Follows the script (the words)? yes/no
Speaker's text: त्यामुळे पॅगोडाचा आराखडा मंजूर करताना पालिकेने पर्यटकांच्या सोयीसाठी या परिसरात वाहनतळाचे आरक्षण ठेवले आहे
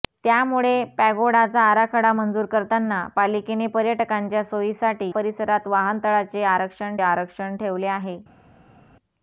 no